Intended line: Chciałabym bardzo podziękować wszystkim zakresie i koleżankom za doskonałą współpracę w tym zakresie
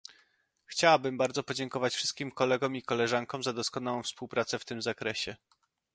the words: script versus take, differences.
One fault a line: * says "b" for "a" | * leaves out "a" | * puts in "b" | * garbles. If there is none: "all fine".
* says "kolegom" for "zakresie"